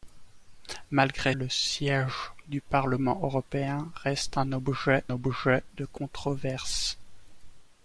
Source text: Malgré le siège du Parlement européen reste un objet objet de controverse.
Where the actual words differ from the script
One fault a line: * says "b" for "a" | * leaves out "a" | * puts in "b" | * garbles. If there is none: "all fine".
all fine